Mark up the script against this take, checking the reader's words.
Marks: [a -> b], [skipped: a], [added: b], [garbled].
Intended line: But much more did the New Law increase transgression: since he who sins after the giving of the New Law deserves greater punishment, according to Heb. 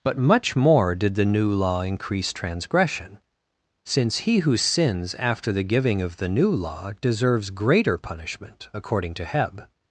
But much more did the New Law increase transgression: since he who sins after the giving of the New Law deserves greater punishment, according to Heb.